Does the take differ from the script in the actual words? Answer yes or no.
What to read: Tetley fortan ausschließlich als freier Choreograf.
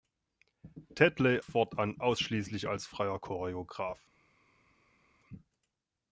no